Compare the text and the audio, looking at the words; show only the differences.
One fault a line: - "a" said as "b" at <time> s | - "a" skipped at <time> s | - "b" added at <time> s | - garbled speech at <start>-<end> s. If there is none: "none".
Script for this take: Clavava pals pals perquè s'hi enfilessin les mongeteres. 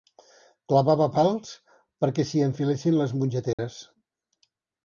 - "pals" skipped at 1.5 s